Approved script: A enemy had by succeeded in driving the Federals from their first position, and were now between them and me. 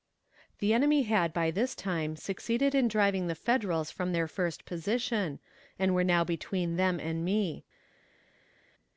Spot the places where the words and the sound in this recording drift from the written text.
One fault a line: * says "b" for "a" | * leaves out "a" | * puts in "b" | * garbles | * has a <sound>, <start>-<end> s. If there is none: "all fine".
* says "The" for "A"
* puts in "this time"